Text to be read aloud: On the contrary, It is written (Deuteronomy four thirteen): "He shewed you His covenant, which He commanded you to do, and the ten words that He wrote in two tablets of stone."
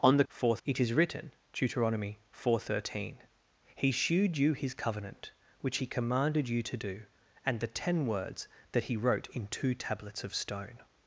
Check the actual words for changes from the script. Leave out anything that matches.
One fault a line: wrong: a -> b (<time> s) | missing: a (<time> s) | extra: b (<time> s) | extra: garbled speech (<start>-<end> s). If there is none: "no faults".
wrong: contrary -> four (0.3 s)